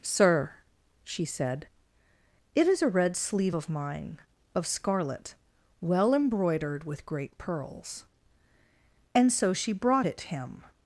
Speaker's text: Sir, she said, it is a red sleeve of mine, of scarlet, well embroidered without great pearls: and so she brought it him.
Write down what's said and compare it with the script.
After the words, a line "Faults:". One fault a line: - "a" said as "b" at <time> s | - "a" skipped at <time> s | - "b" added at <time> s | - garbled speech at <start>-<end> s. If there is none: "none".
Sir, she said, it is a red sleeve of mine, of scarlet, well embroidered with great pearls: and so she brought it him.
Faults:
- "without" said as "with" at 6.8 s